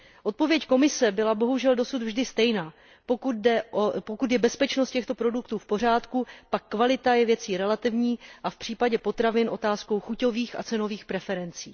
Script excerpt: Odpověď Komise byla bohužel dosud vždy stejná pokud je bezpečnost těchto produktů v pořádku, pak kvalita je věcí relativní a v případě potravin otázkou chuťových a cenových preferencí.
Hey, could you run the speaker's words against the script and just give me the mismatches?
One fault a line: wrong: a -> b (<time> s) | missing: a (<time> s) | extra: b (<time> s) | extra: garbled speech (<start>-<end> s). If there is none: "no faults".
no faults